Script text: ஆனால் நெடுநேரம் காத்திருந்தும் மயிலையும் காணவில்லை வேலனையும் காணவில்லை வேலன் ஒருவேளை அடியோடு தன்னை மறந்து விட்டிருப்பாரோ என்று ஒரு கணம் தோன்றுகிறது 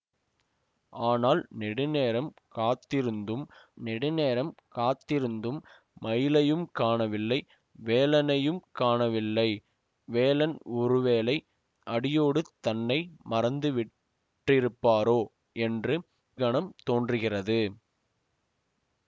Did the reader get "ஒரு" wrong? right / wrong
wrong